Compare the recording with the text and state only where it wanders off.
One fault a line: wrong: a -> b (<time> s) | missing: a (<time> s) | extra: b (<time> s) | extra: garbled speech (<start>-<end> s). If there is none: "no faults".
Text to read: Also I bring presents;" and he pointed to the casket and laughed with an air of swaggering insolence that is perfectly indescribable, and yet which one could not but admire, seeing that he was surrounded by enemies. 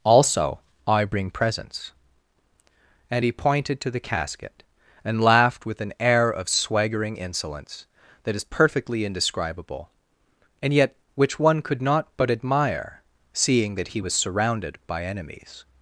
no faults